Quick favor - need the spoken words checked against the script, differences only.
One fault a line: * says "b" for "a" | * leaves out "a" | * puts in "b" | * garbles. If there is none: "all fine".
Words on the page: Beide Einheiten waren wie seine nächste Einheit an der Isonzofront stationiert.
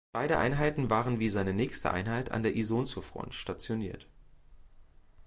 all fine